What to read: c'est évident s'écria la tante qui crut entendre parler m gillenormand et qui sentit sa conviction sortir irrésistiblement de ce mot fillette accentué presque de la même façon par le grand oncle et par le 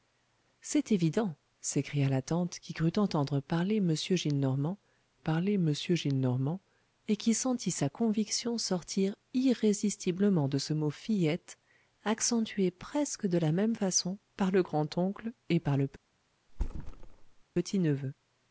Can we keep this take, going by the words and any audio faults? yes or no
no